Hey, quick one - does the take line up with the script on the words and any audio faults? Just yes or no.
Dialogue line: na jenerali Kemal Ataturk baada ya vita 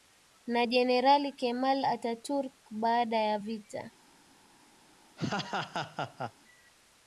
no